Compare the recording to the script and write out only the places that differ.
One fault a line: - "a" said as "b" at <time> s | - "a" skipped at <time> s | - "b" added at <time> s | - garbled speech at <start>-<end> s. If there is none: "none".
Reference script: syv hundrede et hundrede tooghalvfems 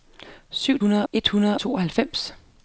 none